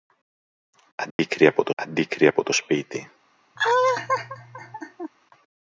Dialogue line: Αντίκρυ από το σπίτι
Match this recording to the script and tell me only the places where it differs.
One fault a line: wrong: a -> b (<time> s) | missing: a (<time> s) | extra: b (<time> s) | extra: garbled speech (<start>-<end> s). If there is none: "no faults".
extra: αντίκρυ από το (1.7 s)